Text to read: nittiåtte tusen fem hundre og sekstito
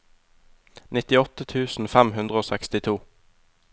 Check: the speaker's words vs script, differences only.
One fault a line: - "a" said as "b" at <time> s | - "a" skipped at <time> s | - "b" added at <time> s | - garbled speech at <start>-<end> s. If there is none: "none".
none